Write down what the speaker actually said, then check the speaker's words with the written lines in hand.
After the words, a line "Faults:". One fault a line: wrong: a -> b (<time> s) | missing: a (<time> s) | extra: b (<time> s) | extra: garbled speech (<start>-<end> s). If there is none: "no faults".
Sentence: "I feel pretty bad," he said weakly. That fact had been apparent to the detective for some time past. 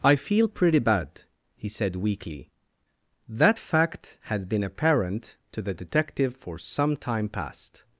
"I feel pretty bad," he said weakly. That fact had been apparent to the detective for some time past.
Faults:
no faults